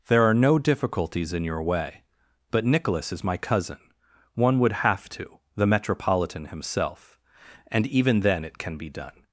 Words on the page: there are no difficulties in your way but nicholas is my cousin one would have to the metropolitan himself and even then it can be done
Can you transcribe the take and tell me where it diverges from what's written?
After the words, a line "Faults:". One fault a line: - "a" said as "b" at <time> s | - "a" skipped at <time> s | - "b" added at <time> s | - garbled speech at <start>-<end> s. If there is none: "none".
there are no difficulties in your way but nicholas is my cousin one would have to the metropolitan himself and even then it can be done
Faults:
none